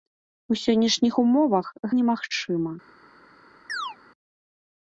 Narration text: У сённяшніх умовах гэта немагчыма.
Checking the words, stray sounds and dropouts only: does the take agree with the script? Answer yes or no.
no